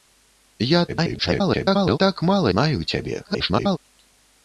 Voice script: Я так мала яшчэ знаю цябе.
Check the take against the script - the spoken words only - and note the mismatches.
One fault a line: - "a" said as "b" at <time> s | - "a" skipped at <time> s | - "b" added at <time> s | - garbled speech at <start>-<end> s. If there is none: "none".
- garbled speech at 0.9-2.0 s
- "яшчэ" skipped at 2.5 s
- garbled speech at 3.2-3.8 s